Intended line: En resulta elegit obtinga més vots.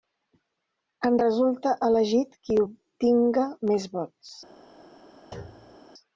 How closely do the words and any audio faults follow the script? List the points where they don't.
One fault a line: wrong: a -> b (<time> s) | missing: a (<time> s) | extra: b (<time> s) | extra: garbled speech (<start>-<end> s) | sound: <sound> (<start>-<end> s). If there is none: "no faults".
extra: qui (2.5 s)
sound: thud (5.3-5.8 s)